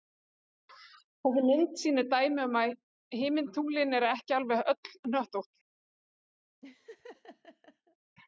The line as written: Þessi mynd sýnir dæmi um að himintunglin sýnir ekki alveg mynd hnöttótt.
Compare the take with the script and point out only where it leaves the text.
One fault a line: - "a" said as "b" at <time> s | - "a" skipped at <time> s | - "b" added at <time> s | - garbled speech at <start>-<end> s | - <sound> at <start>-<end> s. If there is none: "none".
- "sýnir" said as "eru" at 4.0 s
- "mynd" said as "öll" at 4.8 s
- laugh at 6.6-8.0 s